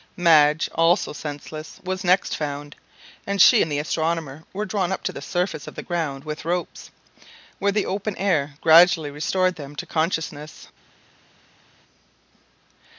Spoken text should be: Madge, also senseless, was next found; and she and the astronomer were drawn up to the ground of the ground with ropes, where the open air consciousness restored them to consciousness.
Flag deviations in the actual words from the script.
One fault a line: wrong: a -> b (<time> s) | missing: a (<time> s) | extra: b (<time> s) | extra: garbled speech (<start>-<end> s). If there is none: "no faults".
wrong: ground -> surface (5.2 s)
wrong: consciousness -> gradually (8.6 s)